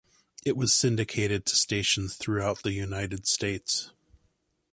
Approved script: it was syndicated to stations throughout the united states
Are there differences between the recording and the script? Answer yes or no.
no